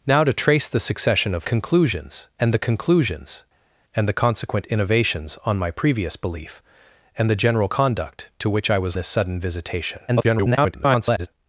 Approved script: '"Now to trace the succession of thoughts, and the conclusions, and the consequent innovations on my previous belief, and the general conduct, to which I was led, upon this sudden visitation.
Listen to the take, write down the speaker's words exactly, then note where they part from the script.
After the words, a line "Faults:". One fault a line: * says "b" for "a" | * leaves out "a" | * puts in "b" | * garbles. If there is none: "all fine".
'"Now to trace the succession of conclusions, and the conclusions, and the consequent innovations on my previous belief, and the general conduct, to which I was this sudden visitation. [garbled]
Faults:
* says "conclusions" for "thoughts"
* leaves out "led upon"
* garbles